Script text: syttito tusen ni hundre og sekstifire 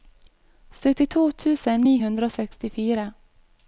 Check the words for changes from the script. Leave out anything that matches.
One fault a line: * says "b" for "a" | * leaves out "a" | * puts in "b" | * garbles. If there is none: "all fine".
all fine